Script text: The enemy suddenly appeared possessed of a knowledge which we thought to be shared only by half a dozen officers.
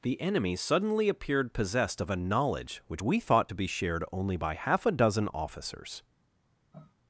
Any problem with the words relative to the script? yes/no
no